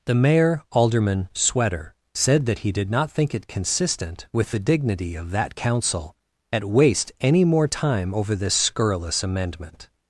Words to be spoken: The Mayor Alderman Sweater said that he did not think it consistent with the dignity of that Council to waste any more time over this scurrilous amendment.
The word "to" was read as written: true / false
false